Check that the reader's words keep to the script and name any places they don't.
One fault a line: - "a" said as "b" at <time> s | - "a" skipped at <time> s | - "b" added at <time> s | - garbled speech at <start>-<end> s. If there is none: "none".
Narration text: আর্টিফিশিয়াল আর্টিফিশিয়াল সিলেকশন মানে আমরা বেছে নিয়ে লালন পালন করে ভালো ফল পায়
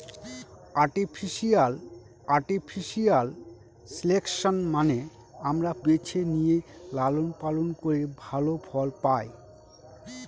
none